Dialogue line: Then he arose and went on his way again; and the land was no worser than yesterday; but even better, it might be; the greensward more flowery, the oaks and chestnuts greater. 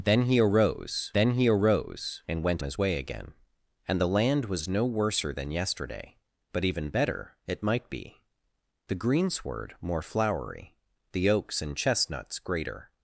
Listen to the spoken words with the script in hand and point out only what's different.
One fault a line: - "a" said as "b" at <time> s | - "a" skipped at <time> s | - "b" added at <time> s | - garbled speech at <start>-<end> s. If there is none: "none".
- "then he arose" added at 1.1 s
- "on" skipped at 2.6 s